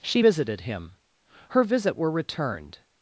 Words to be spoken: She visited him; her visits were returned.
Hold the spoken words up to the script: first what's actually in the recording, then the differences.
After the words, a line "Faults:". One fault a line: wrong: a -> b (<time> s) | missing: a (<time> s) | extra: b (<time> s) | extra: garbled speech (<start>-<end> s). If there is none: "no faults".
She visited him; her visit were returned.
Faults:
wrong: visits -> visit (1.6 s)